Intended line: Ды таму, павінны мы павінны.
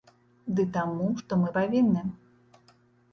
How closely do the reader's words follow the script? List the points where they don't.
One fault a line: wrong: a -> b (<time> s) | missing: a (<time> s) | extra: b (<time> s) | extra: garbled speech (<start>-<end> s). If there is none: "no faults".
wrong: павінны -> што (1.2 s)